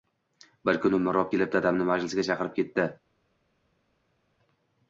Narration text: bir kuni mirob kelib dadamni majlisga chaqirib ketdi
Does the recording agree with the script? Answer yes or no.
yes